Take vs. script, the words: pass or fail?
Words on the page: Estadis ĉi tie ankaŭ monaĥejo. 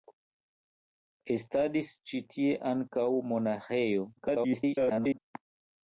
fail